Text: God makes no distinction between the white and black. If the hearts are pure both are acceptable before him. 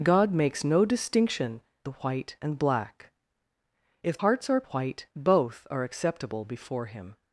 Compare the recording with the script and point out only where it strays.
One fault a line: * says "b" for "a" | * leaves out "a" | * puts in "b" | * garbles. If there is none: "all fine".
* leaves out "between"
* leaves out "the"
* says "white" for "pure"